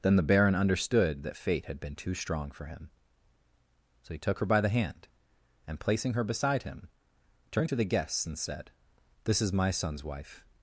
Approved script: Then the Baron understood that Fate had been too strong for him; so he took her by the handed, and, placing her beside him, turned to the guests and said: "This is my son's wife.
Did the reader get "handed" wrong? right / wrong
wrong